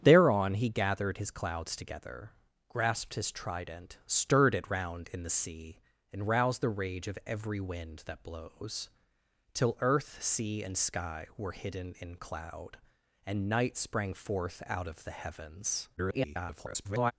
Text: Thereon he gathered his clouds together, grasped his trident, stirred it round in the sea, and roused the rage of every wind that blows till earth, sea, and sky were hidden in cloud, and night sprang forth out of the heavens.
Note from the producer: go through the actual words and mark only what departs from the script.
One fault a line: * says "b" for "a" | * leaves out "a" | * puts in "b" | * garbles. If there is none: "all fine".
* garbles